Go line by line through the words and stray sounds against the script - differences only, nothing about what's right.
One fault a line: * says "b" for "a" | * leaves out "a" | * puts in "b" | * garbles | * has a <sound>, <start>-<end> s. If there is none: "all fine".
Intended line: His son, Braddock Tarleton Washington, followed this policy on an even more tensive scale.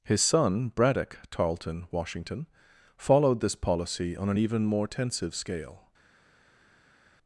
all fine